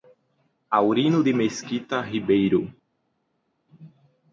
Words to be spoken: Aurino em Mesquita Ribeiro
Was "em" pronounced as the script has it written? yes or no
no